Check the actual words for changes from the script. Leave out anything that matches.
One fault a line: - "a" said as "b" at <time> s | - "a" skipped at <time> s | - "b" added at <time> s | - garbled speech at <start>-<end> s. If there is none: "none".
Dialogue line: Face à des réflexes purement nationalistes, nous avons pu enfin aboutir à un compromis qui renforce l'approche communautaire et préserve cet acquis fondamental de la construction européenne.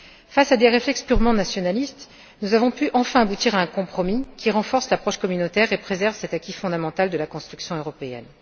none